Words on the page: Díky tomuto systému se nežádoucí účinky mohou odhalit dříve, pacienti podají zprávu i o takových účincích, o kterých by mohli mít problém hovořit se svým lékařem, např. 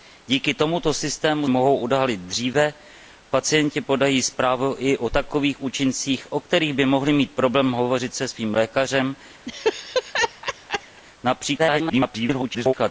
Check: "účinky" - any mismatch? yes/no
yes